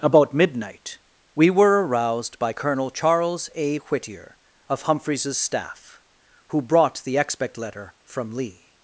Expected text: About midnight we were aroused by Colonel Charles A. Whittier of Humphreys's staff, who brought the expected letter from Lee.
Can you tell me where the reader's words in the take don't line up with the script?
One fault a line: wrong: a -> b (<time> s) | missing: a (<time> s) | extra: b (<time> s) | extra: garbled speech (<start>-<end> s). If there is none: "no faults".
wrong: expected -> expect (7.2 s)